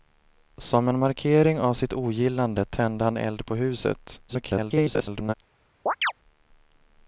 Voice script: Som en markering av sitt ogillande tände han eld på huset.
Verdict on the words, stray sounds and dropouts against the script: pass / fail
fail